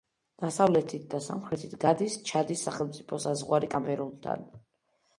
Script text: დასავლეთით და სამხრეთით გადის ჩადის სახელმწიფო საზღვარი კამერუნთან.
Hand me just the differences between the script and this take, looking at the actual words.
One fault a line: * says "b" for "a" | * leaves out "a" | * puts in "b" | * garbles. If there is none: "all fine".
all fine